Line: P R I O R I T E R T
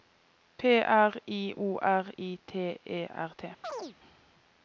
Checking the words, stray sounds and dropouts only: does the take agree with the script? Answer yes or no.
no